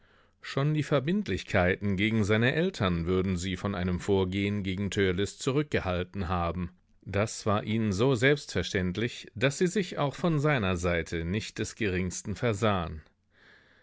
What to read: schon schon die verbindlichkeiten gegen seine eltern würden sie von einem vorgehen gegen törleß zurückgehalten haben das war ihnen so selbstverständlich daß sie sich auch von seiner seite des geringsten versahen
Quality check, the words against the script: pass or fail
fail